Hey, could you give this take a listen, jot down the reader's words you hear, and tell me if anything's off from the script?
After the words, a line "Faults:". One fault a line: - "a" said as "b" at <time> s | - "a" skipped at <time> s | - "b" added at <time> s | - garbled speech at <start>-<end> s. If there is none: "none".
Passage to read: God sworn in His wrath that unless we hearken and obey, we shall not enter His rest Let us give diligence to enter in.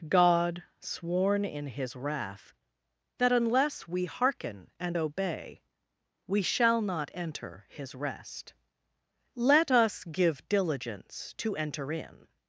God sworn in His wrath that unless we hearken and obey, we shall not enter His rest Let us give diligence to enter in.
Faults:
none